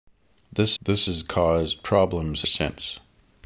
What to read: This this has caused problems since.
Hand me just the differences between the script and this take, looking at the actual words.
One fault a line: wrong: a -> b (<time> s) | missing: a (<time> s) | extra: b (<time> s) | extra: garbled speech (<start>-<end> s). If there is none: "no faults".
no faults